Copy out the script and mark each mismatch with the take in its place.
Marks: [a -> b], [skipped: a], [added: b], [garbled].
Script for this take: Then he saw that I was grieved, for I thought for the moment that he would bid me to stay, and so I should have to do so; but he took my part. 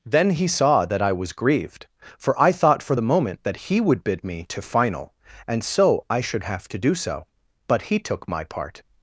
Then he saw that I was grieved, for I thought for the moment that he would bid me to [stay, -> final] and so I should have to do so; but he took my part.